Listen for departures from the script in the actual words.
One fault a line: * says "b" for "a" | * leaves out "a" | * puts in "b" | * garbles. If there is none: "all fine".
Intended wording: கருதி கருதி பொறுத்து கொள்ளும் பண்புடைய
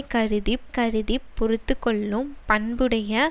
all fine